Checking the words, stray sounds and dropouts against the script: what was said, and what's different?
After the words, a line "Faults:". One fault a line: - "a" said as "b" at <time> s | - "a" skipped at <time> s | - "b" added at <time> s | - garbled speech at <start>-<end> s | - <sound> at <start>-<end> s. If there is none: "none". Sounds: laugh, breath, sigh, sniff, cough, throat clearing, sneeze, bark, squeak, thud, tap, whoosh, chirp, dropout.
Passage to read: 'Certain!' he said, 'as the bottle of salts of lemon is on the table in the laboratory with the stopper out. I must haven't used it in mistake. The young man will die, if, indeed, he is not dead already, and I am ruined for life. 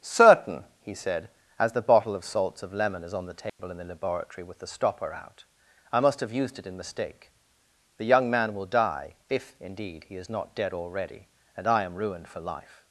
'Certain!' he said, 'as the bottle of salts of lemon is on the table in the laboratory with the stopper out. I must have used it in mistake. The young man will die, if, indeed, he is not dead already, and I am ruined for life.
Faults:
- dropout at 3.5-3.6 s
- "haven't" said as "have" at 6.2 s